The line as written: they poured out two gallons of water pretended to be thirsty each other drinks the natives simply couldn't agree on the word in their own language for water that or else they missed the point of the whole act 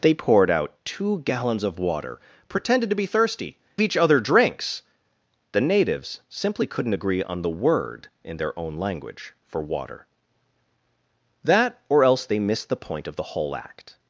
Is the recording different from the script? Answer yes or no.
no